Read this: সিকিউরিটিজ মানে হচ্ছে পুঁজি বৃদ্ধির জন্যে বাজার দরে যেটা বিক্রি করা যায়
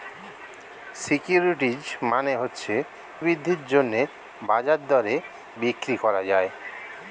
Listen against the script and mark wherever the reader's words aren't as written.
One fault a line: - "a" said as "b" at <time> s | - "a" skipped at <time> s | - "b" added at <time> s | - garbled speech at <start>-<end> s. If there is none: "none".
- "পুঁজি" skipped at 2.7 s
- "যেটা" skipped at 5.2 s